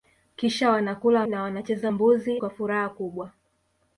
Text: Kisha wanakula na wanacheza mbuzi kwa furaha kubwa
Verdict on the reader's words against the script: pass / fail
pass